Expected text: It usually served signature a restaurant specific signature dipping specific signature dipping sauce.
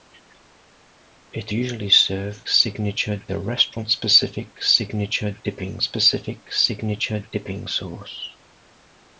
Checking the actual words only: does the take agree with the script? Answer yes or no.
yes